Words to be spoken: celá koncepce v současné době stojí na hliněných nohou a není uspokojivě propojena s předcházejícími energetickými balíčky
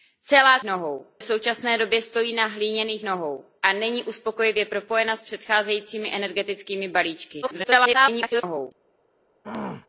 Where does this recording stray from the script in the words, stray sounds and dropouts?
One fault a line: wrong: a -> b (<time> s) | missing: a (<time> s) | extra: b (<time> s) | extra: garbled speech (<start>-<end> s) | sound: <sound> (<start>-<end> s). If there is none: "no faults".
wrong: koncepce -> nohou (0.6 s)
extra: garbled speech (7.4-8.7 s)
sound: throat clearing (9.4-9.9 s)